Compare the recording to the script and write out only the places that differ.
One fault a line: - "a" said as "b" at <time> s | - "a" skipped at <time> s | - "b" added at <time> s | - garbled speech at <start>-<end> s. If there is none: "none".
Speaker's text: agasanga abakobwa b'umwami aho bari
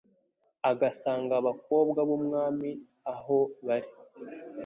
none